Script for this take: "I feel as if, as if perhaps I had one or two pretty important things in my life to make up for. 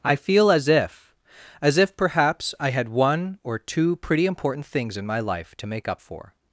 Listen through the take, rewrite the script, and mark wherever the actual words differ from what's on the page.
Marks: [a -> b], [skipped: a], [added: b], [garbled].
"I feel as if, as if perhaps I had one or two pretty important things in my life to make up for.